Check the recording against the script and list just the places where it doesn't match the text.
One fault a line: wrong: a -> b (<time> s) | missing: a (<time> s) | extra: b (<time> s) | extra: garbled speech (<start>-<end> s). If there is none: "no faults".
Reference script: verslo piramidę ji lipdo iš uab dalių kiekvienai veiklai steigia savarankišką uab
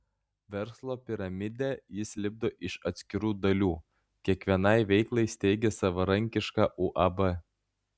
wrong: ji -> jis (2.0 s)
wrong: uab -> atskirų (2.9 s)